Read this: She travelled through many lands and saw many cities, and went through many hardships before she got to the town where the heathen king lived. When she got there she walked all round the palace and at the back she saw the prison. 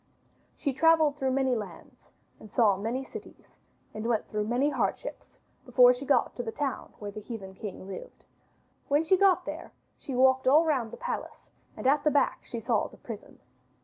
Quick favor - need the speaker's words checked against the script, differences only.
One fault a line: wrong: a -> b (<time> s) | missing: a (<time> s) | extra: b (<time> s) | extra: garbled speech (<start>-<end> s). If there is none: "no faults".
no faults